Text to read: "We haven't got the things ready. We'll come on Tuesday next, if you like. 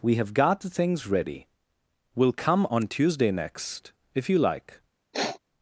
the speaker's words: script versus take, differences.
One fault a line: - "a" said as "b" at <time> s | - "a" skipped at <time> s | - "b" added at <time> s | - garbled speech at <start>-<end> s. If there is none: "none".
- "haven't" said as "have" at 0.1 s